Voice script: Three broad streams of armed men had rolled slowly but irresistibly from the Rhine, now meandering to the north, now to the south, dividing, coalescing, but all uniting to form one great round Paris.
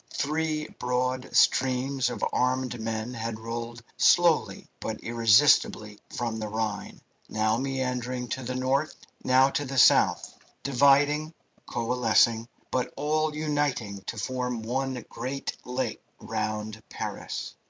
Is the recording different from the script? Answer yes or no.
yes